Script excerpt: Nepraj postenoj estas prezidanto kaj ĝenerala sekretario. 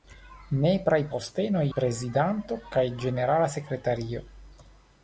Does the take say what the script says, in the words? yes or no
no